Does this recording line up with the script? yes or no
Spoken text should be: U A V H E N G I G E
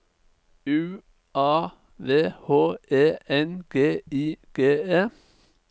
yes